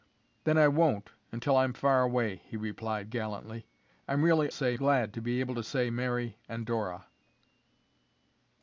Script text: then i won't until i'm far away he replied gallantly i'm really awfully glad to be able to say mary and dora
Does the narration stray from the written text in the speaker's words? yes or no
yes